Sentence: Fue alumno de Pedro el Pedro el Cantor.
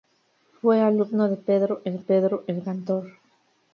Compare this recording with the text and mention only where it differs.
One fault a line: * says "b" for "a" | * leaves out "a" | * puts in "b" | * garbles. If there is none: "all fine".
all fine